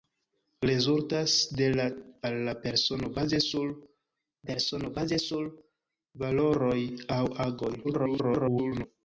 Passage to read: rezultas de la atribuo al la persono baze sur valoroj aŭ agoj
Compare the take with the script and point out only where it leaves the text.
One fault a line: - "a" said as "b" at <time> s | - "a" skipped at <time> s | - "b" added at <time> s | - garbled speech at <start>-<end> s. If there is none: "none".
- "atribuo" skipped at 1.9 s
- "persono baze sur" added at 4.5 s
- garbled speech at 7.8-8.9 s